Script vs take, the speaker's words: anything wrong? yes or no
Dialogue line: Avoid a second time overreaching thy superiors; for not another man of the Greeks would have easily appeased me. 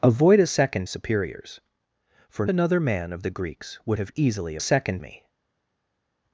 yes